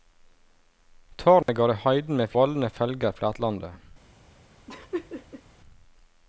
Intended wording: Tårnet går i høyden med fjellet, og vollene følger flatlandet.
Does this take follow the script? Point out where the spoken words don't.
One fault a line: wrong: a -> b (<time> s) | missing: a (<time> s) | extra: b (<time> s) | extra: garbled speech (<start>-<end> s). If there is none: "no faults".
missing: fjellet og (2.3 s)